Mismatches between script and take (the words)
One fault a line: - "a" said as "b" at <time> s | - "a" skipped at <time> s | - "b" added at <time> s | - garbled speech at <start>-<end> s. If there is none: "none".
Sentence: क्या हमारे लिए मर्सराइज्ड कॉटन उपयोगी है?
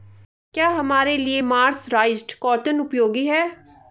none